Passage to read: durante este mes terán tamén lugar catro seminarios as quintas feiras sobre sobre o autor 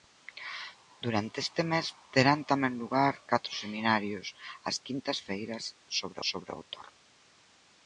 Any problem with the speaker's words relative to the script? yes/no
no